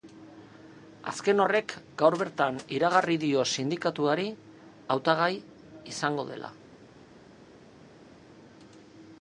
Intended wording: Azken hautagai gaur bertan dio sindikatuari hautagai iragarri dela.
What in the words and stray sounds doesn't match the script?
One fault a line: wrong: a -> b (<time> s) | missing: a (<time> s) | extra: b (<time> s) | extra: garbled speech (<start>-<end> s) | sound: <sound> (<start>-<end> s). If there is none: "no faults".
wrong: hautagai -> horrek (1.4 s)
extra: iragarri (2.8 s)
wrong: iragarri -> izango (5.9 s)